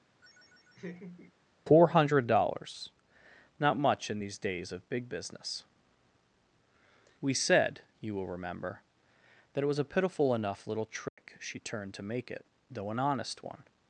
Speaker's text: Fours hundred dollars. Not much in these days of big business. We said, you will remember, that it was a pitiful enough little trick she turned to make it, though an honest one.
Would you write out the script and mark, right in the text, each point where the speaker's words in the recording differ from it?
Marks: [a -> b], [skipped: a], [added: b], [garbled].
[Fours -> Four] hundred dollars. Not much in these days of big business. We said, you will remember, that it was a pitiful enough little trick she turned to make it, though an honest one.